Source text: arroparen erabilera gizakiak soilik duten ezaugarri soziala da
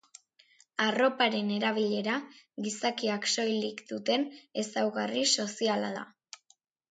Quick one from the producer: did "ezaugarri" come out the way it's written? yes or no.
yes